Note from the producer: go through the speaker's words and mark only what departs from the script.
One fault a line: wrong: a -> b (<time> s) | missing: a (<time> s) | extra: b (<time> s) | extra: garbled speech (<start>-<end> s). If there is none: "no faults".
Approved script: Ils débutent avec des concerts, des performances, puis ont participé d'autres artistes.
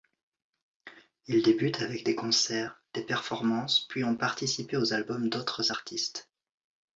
extra: aux albums (4.8 s)